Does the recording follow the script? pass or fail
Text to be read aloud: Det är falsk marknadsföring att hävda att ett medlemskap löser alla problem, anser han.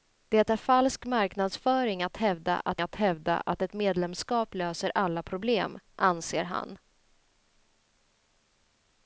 fail